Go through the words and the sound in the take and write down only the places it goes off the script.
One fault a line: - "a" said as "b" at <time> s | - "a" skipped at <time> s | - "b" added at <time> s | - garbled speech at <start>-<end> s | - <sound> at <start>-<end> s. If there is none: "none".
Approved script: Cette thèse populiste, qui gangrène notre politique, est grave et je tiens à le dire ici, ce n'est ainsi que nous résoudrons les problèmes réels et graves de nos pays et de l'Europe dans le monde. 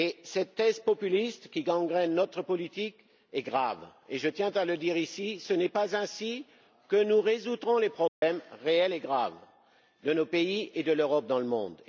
- "pas" added at 5.7 s
- dropout at 8.1-8.2 s